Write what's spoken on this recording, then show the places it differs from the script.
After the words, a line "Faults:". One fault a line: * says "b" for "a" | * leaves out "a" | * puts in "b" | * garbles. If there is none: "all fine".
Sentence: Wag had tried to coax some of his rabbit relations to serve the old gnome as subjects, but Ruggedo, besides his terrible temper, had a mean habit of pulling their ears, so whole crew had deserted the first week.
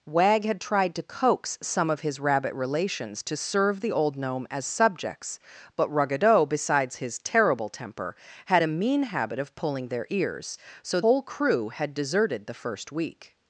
Wag had tried to coax some of his rabbit relations to serve the old gnome as subjects, but Ruggedo, besides his terrible temper, had a mean habit of pulling their ears, so whole crew had deserted the first week.
Faults:
all fine